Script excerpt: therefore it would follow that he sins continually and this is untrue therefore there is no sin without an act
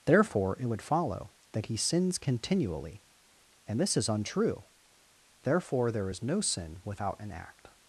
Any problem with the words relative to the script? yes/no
no